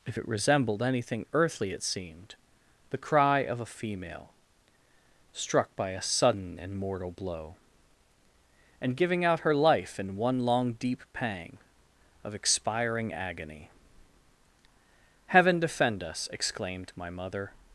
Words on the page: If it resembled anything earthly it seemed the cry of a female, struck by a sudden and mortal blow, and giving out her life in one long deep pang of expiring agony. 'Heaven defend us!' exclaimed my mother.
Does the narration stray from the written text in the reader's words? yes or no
no